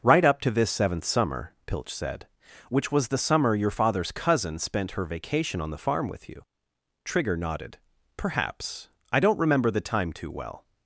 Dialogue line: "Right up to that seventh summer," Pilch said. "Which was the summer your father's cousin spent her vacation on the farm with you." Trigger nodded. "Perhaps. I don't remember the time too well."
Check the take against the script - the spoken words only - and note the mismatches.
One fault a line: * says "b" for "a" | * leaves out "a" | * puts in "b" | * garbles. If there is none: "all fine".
* says "this" for "that"